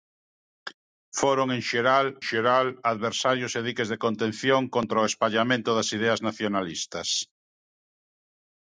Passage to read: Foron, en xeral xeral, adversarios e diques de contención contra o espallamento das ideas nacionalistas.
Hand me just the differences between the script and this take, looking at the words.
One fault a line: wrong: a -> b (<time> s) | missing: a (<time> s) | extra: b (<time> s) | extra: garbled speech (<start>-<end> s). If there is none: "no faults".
no faults